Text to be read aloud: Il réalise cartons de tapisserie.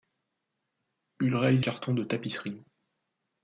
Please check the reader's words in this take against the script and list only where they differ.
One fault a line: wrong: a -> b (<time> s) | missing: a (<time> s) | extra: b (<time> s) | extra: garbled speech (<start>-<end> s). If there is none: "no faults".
no faults